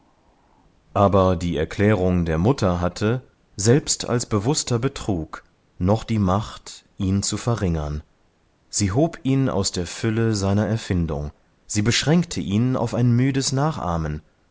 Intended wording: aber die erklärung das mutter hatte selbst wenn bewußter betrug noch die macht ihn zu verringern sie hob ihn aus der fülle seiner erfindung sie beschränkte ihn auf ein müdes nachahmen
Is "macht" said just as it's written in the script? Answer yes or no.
yes